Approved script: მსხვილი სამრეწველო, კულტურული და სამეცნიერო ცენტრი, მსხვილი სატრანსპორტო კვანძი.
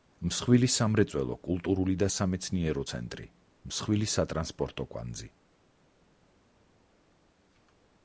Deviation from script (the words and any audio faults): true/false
false